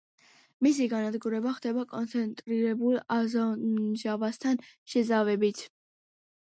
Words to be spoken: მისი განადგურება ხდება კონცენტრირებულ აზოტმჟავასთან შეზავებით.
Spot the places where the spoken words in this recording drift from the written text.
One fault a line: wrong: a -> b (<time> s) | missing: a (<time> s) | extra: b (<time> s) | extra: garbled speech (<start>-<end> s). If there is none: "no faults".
no faults